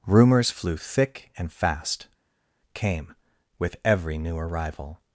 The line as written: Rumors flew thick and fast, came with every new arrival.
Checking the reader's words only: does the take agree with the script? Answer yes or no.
yes